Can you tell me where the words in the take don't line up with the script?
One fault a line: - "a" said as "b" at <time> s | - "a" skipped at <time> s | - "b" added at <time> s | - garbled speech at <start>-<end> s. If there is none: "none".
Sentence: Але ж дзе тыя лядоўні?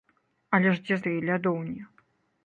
none